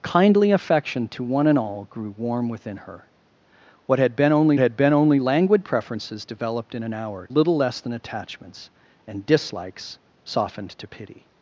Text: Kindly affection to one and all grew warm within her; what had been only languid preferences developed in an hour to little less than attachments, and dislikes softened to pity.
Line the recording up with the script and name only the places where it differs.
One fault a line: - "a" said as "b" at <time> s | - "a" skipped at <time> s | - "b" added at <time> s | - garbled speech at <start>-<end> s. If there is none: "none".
- "had been only" added at 4.6 s
- "to" skipped at 7.3 s